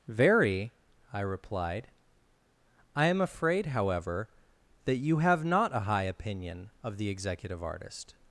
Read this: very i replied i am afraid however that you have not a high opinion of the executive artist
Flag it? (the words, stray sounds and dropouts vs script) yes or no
no